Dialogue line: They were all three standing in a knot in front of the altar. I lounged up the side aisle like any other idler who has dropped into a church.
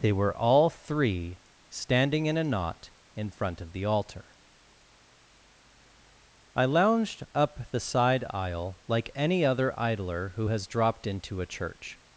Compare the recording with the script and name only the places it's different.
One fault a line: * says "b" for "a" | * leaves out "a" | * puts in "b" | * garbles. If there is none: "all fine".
all fine